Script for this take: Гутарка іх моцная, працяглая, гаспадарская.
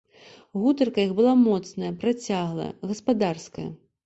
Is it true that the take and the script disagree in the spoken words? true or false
true